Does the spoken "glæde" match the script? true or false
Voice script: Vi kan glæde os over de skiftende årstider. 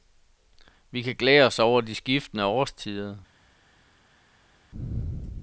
true